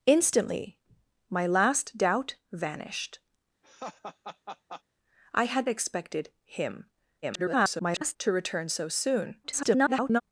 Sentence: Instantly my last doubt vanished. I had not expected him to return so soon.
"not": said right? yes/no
no